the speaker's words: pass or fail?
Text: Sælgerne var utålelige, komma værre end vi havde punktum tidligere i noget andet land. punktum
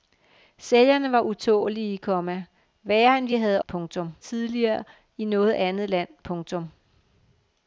pass